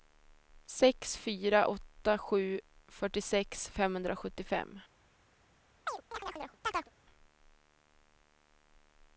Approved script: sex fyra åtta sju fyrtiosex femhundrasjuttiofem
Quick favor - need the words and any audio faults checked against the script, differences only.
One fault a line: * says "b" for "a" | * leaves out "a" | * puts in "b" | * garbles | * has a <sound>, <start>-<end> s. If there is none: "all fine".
* has a chirp, 5.9-6.9 s